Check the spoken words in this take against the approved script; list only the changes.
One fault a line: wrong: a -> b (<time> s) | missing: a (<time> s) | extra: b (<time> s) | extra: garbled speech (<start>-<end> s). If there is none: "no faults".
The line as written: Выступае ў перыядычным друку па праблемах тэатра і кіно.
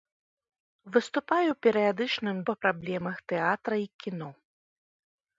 missing: друку (2.4 s)